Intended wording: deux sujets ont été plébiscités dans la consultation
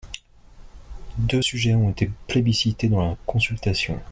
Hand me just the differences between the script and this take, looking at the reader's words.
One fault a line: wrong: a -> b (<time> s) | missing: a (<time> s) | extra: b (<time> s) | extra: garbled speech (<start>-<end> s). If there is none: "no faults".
no faults